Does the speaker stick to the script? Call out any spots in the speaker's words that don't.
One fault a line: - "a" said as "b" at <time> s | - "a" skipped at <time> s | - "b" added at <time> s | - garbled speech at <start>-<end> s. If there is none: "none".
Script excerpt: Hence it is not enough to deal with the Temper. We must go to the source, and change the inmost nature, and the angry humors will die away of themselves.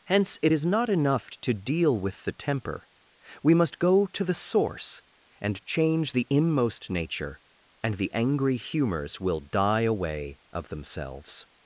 none